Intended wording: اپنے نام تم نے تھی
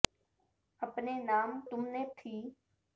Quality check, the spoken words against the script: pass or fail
pass